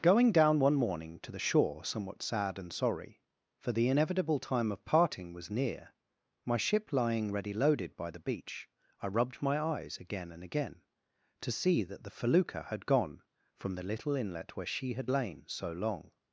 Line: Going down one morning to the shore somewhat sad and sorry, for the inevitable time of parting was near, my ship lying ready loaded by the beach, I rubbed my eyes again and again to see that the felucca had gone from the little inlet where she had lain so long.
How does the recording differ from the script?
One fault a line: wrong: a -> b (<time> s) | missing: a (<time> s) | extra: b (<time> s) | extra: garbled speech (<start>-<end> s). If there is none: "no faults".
no faults